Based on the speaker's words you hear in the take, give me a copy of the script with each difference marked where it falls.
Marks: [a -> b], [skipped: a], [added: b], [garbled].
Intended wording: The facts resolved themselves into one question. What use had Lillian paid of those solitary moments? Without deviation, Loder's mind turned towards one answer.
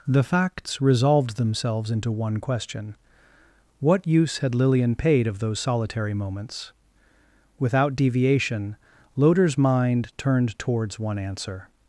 The facts resolved themselves into one question. What use had Lillian paid of those solitary moments? Without deviation, Loder's mind turned towards one answer.